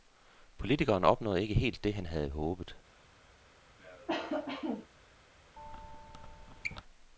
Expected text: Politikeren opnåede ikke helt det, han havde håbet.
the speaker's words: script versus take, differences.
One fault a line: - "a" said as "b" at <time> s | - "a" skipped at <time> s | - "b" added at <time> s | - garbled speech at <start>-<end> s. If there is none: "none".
none